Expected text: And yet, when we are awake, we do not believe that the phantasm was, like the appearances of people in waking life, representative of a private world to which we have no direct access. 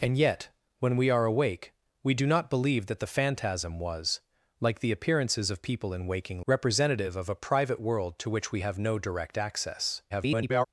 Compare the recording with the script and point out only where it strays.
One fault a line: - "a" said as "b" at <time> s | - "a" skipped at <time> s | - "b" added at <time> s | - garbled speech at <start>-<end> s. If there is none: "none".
- "life" skipped at 6.4 s
- garbled speech at 10.1-10.7 s